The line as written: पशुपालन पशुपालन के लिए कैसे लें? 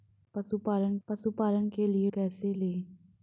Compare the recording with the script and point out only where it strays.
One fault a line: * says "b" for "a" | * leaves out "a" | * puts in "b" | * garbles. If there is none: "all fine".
all fine